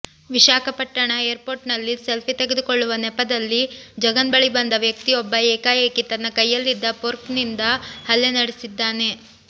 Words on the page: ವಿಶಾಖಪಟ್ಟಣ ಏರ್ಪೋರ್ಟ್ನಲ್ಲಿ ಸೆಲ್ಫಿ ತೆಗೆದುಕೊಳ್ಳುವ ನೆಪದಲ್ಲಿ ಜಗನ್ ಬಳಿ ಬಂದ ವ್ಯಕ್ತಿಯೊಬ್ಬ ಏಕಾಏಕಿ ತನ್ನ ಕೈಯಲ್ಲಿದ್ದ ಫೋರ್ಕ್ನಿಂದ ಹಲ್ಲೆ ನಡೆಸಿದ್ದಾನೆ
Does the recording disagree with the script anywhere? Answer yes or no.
no